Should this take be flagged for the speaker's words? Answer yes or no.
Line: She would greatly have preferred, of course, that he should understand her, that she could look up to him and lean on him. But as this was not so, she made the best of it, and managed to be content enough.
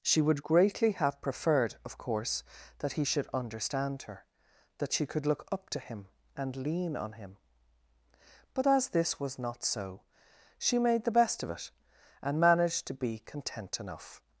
no